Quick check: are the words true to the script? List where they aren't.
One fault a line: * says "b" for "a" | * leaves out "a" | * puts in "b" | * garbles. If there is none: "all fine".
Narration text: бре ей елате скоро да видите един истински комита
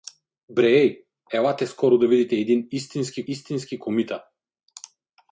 * puts in "истински"